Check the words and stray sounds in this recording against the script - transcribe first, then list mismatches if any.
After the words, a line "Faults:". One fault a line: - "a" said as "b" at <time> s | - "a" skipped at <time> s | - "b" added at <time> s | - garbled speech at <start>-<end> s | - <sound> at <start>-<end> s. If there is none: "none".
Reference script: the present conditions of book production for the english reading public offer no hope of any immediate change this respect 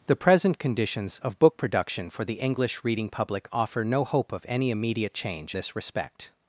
the present conditions of book production for the english reading public offer no hope of any immediate change this respect
Faults:
none